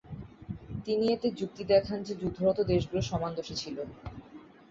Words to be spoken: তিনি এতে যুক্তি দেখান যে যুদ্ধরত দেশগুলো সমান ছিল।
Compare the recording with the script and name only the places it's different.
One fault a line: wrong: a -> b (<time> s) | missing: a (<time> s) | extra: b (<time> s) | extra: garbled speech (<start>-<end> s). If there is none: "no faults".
extra: দোষী (3.4 s)